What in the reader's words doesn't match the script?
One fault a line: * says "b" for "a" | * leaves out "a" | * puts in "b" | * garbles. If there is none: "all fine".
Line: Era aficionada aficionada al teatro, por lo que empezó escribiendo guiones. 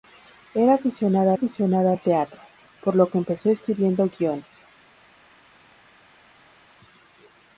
all fine